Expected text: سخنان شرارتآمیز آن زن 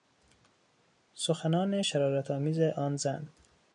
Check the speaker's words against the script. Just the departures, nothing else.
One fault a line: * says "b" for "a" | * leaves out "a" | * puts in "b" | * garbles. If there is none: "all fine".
all fine